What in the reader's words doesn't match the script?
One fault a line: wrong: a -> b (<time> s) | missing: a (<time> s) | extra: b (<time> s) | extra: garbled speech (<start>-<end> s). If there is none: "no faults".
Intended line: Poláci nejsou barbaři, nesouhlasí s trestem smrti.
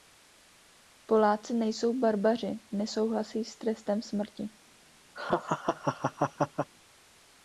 no faults